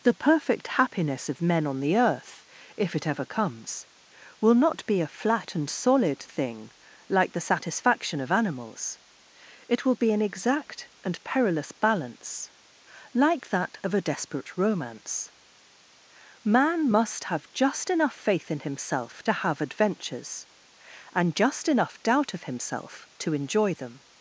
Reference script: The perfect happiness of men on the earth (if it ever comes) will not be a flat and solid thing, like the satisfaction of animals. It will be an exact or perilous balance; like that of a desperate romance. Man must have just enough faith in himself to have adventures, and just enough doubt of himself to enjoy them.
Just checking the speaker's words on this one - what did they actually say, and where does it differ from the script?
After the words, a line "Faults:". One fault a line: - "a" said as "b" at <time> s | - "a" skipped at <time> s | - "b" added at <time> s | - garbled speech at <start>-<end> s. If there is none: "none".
The perfect happiness of men on the earth (if it ever comes) will not be a flat and solid thing, like the satisfaction of animals. It will be an exact and perilous balance; like that of a desperate romance. Man must have just enough faith in himself to have adventures, and just enough doubt of himself to enjoy them.
Faults:
- "or" said as "and" at 11.0 s